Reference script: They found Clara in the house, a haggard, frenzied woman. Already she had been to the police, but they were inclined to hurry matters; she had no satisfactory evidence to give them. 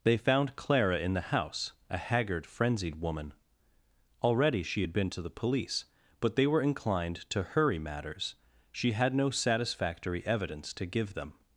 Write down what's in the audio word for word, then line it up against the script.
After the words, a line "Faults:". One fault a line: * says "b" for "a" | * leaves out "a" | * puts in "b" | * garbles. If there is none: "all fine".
They found Clara in the house, a haggard, frenzied woman. Already she had been to the police, but they were inclined to hurry matters; she had no satisfactory evidence to give them.
Faults:
all fine